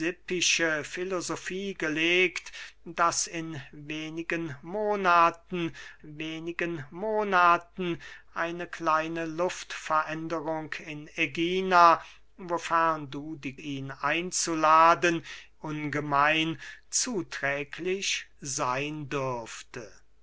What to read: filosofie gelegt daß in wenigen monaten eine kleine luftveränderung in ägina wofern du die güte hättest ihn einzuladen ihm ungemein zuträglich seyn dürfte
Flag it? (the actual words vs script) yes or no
yes